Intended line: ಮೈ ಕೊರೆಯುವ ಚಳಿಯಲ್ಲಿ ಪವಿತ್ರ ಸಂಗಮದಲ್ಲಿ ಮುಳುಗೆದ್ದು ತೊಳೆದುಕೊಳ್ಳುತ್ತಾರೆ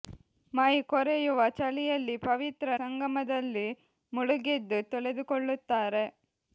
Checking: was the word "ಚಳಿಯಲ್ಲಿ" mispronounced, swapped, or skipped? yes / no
no